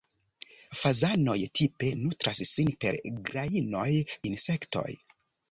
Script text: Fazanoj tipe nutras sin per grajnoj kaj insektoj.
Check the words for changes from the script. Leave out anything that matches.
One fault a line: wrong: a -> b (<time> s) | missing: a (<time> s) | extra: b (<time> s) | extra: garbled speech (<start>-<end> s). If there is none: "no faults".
missing: kaj (3.9 s)